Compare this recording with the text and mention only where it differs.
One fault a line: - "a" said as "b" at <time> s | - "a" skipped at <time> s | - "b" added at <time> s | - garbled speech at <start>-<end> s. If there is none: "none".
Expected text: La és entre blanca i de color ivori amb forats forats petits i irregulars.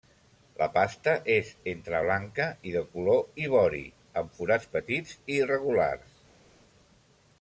- "pasta" added at 0.8 s
- "forats" skipped at 4.7 s